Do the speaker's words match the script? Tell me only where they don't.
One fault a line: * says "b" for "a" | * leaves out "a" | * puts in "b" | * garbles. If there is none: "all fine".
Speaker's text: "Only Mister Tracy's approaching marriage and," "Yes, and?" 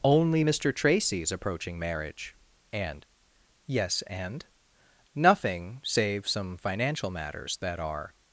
* puts in "Nothing save some financial matters that are"